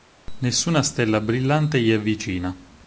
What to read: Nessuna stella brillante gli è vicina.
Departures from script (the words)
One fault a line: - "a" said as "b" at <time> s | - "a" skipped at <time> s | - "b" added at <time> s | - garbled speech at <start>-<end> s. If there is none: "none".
none